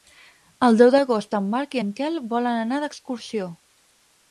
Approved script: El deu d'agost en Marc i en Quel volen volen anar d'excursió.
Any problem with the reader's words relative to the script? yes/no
yes